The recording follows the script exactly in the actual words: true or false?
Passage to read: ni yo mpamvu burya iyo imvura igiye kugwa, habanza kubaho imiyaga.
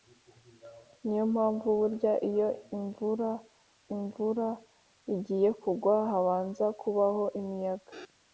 false